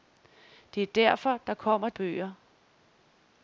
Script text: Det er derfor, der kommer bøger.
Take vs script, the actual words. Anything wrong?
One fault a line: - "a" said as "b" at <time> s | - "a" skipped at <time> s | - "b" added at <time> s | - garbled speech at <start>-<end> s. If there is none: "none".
none